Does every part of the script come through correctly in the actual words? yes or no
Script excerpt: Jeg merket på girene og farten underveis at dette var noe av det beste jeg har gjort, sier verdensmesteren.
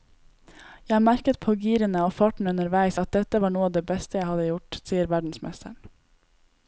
no